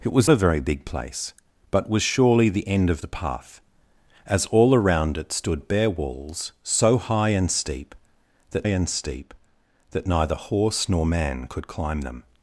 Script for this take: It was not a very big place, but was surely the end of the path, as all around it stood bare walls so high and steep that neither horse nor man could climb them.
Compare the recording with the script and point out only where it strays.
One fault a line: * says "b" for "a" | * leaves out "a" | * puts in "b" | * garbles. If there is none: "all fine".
* leaves out "not"
* puts in "and steep that"